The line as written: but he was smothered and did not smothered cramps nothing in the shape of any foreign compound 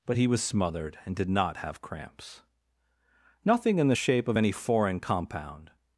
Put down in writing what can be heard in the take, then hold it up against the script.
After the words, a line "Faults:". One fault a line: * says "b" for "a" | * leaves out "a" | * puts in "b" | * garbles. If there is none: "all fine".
but he was smothered and did not have cramps nothing in the shape of any foreign compound
Faults:
* says "have" for "smothered"